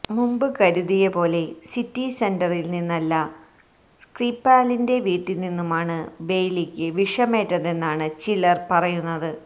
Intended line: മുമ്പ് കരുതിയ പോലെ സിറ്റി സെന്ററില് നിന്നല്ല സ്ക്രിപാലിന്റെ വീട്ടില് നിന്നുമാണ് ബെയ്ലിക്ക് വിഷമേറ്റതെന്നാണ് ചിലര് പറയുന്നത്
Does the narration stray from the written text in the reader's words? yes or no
no